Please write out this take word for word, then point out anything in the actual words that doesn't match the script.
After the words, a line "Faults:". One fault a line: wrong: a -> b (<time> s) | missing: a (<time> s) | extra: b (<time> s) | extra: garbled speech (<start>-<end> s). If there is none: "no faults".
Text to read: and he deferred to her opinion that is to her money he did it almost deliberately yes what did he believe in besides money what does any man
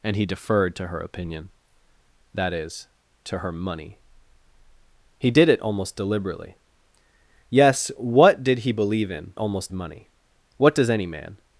and he deferred to her opinion that is to her money he did it almost deliberately yes what did he believe in almost money what does any man
Faults:
wrong: besides -> almost (9.4 s)